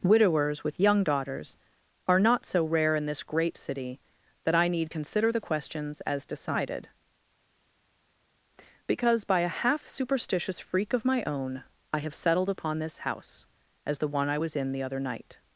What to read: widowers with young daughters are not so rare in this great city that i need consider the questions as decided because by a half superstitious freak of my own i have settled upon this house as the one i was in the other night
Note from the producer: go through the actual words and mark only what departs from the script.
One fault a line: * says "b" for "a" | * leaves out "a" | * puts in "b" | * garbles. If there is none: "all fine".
all fine